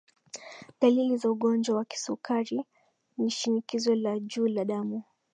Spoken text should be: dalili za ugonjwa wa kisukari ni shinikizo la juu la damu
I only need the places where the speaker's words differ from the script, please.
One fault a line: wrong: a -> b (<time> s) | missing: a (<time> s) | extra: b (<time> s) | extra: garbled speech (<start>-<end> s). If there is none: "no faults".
no faults